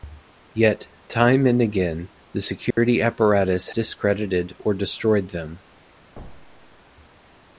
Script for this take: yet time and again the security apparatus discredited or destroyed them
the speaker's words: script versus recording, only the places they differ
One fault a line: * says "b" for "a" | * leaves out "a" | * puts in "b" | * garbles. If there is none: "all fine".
all fine